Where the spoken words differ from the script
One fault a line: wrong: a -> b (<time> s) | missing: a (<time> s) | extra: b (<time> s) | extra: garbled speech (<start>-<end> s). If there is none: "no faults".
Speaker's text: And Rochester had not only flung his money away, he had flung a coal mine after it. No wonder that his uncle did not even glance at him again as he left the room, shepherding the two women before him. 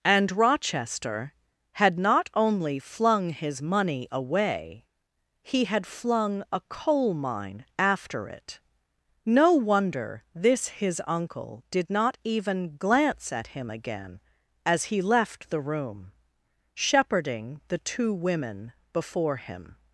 wrong: that -> this (10.3 s)